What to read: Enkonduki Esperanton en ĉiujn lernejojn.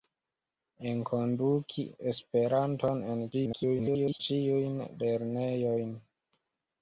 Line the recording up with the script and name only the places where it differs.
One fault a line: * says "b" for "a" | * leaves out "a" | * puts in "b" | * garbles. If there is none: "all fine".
* garbles